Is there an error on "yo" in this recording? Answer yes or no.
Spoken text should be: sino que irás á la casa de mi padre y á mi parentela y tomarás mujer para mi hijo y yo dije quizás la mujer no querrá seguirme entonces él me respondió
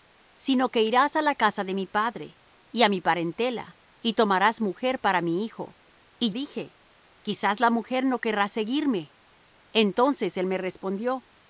yes